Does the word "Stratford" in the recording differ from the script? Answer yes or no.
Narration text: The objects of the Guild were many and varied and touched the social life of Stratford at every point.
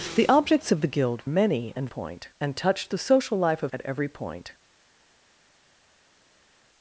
yes